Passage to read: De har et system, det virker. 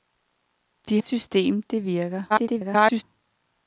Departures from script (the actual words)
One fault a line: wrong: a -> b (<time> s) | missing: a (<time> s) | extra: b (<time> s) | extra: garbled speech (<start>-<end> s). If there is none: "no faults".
missing: har (1.0 s)
extra: garbled speech (2.3-3.0 s)